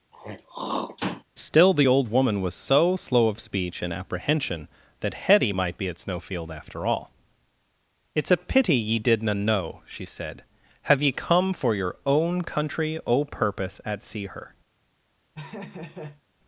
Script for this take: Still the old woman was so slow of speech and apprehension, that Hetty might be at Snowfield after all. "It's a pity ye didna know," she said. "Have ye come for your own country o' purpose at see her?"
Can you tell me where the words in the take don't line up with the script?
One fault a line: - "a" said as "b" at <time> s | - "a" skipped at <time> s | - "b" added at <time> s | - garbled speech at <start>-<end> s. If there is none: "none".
none